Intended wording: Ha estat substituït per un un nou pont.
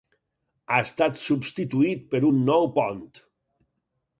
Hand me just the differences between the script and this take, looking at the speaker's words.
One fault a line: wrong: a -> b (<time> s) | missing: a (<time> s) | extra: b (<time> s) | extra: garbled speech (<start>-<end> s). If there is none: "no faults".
missing: un (2.4 s)